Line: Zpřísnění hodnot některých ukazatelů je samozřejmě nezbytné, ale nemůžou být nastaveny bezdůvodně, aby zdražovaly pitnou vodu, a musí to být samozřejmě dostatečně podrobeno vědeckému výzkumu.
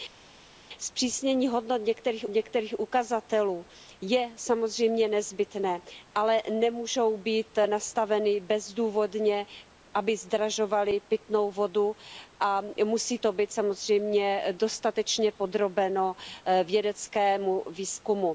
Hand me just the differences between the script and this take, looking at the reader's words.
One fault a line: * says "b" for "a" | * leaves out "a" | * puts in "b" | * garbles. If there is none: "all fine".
* puts in "některých"